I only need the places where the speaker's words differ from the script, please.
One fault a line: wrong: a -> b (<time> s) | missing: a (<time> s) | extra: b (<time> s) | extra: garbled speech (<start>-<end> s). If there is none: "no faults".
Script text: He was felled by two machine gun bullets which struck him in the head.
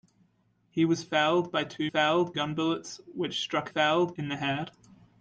wrong: machine -> felled (1.9 s)
wrong: him -> felled (3.7 s)